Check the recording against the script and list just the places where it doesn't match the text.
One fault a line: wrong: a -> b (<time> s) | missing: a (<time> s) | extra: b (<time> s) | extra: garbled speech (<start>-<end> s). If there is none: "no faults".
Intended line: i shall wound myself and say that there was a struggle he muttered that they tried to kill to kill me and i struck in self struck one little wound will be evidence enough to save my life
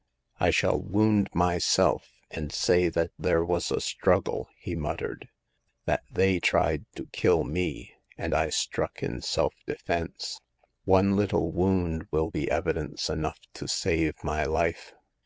missing: to kill (7.4 s)
wrong: struck -> defense (9.6 s)